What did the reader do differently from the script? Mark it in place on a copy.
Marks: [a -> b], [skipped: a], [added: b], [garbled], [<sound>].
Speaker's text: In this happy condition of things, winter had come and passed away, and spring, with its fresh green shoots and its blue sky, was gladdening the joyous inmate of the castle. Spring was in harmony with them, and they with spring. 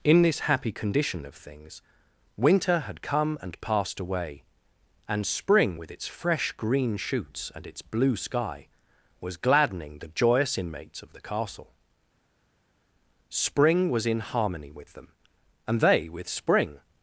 In this happy condition of things, winter had come and passed away, and spring, with its fresh green shoots and its blue sky, was gladdening the joyous [inmate -> inmates] of the castle. Spring was in harmony with them, and they with spring.